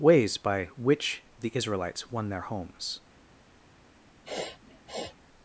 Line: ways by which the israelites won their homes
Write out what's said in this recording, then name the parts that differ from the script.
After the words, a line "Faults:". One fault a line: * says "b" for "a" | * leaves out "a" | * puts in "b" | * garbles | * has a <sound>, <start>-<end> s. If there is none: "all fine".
ways by which the israelites won their homes
Faults:
* has a sniff, 4.2-5.2 s